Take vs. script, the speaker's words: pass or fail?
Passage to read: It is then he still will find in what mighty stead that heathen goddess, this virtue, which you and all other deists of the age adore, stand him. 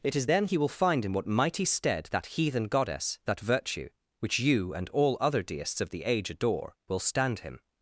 fail